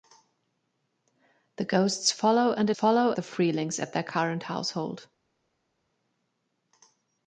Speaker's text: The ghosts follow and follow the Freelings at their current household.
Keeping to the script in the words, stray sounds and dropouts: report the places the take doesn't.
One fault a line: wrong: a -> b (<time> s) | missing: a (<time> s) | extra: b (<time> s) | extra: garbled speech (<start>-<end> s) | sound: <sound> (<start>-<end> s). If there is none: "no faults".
no faults